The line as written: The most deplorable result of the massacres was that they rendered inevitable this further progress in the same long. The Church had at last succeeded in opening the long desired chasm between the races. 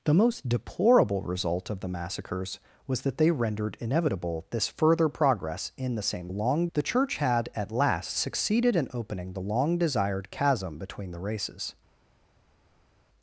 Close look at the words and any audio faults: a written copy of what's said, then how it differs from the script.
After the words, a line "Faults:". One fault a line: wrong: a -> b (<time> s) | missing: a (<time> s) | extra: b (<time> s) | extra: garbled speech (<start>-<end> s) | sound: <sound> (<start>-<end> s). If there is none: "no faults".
The most deplorable result of the massacres was that they rendered inevitable this further progress in the same long. The Church had at last succeeded in opening the long desired chasm between the races.
Faults:
no faults